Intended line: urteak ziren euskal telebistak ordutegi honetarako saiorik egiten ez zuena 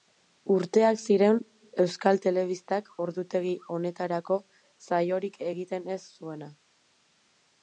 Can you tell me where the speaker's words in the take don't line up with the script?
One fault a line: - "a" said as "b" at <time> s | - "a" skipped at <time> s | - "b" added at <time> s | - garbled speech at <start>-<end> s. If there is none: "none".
none